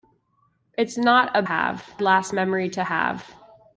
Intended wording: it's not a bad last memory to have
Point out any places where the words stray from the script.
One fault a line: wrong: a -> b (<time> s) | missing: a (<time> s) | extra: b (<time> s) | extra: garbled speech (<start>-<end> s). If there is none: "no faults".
wrong: bad -> have (1.4 s)